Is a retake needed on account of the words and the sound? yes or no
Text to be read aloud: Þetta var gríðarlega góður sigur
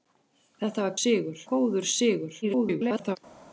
yes